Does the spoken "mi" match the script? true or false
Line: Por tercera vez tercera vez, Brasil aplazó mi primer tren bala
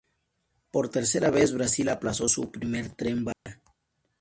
false